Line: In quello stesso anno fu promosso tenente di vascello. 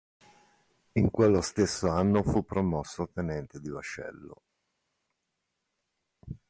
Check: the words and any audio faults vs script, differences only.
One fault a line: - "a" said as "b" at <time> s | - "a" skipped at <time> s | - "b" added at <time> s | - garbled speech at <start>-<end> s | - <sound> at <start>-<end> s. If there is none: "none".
none